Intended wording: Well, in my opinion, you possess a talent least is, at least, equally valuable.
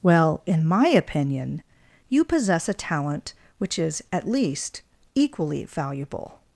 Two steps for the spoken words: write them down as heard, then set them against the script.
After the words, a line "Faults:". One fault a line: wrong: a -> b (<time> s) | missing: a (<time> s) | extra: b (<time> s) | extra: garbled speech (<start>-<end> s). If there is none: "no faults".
Well, in my opinion, you possess a talent which is, at least, equally valuable.
Faults:
wrong: least -> which (3.6 s)